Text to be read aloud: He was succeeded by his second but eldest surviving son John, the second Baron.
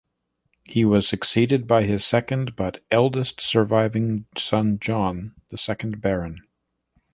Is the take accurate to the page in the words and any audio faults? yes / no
yes